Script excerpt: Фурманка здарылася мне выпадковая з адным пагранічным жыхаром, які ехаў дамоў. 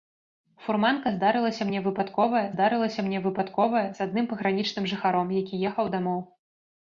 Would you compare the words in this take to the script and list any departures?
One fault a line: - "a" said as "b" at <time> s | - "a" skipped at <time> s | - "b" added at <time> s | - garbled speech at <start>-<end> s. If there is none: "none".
- "здарылася мне выпадковая" added at 2.5 s